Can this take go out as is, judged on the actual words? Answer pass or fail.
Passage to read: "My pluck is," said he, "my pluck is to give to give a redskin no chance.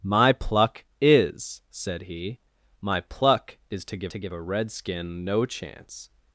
pass